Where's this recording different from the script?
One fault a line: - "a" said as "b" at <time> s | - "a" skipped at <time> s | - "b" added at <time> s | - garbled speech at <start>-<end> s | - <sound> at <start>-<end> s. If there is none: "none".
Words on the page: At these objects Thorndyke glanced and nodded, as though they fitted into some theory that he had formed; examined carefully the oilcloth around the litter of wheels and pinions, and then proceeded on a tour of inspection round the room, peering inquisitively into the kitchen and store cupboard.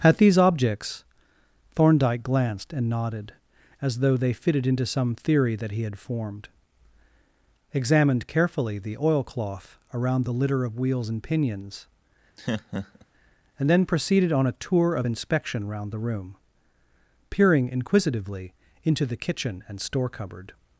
- laugh at 12.4-13.1 s